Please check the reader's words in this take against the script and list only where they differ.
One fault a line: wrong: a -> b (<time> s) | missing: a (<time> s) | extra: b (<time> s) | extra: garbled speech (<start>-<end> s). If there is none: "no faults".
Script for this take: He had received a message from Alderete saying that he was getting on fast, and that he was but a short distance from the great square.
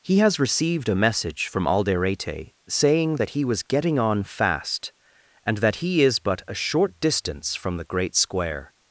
wrong: had -> has (0.2 s)
wrong: was -> is (6.0 s)